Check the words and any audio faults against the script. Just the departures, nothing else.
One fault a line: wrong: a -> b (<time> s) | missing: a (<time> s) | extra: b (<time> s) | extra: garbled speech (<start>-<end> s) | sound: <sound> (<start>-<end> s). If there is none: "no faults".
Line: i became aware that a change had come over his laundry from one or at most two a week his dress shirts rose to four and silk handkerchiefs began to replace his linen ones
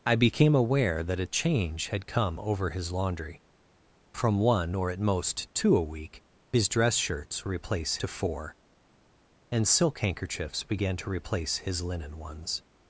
wrong: rose -> replace (7.5 s)